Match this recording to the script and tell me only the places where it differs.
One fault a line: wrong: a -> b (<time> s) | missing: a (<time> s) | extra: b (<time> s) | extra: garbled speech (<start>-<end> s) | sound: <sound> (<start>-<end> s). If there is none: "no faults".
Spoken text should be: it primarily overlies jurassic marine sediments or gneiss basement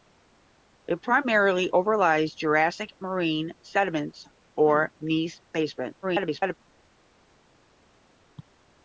extra: garbled speech (6.0-6.5 s)